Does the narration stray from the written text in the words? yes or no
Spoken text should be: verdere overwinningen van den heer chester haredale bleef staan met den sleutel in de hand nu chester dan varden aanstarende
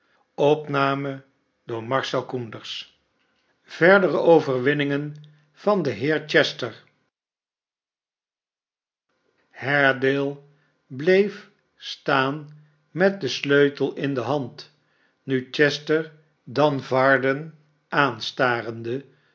no